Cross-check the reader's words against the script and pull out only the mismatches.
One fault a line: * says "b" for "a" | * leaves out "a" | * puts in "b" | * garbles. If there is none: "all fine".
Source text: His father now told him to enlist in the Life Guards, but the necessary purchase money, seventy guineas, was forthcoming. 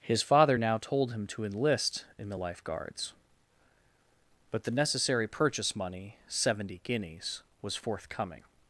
all fine